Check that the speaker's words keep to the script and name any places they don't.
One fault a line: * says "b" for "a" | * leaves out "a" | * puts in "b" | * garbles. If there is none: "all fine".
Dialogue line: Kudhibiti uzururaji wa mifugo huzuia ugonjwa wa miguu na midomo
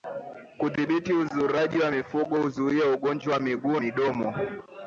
* leaves out "na"